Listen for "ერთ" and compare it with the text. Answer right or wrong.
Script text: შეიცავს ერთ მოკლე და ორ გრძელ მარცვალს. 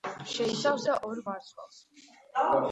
wrong